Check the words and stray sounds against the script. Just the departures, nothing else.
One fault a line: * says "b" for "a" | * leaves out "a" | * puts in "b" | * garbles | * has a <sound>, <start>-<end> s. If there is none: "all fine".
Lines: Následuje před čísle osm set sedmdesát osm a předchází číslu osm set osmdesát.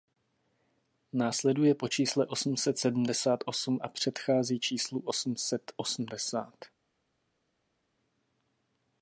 * says "po" for "před"